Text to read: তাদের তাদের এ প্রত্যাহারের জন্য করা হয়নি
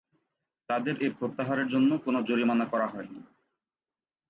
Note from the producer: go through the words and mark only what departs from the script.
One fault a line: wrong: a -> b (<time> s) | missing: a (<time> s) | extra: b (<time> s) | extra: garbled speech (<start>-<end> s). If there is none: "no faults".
missing: তাদের (0.9 s)
extra: কোন জরিমানা (2.0 s)